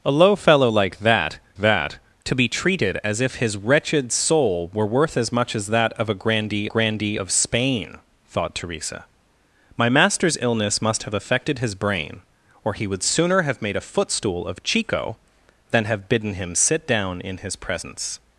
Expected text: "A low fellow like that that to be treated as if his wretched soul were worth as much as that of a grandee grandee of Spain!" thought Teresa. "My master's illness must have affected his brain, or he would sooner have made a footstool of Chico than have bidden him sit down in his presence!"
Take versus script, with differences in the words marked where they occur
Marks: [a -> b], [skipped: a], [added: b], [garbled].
"A low fellow like that that to be treated as if his wretched soul were worth as much as that of a grandee grandee of Spain!" thought Teresa. "My master's illness must have affected his brain, or he would sooner have made a footstool of Chico than have bidden him sit down in his presence!"